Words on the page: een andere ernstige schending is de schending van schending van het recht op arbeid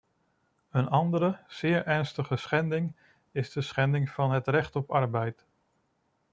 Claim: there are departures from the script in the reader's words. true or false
true